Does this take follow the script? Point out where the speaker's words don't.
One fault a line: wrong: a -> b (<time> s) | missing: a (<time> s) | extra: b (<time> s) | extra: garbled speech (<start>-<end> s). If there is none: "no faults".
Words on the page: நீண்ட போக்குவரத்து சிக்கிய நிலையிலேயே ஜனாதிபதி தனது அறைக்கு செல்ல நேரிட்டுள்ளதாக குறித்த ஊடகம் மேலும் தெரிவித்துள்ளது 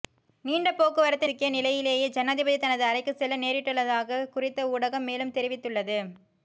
no faults